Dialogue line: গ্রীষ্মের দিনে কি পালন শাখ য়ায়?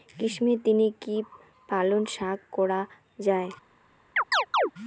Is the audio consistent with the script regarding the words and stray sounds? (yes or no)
no